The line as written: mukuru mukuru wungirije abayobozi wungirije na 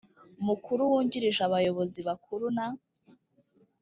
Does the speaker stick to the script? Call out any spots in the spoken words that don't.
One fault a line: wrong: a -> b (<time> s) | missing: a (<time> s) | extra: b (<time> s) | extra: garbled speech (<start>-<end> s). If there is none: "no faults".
missing: mukuru (0.8 s)
wrong: wungirije -> bakuru (2.1 s)